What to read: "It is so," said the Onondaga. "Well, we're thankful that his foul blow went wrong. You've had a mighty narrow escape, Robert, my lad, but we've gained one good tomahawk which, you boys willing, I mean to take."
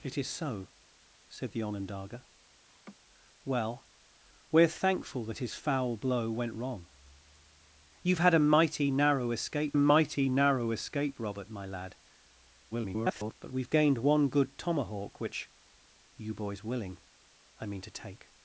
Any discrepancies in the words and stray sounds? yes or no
yes